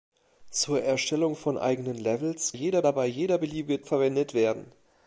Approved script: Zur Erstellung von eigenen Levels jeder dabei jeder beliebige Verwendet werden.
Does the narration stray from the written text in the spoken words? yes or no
no